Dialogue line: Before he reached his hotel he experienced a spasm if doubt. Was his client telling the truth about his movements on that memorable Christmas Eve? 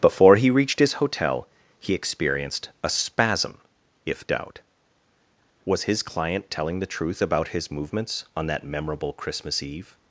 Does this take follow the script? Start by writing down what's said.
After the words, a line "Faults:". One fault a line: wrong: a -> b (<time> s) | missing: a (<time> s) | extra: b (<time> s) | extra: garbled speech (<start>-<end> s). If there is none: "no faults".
Before he reached his hotel he experienced a spasm if doubt. Was his client telling the truth about his movements on that memorable Christmas Eve?
Faults:
no faults